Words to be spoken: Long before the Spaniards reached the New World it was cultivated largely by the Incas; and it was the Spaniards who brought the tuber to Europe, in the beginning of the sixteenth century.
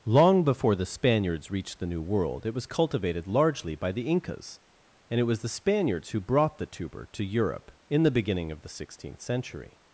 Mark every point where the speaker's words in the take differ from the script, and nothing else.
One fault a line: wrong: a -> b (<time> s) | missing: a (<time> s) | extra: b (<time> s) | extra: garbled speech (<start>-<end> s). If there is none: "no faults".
no faults